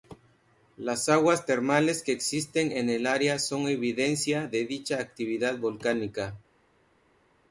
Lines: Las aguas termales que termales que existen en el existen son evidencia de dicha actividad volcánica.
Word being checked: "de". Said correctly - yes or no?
yes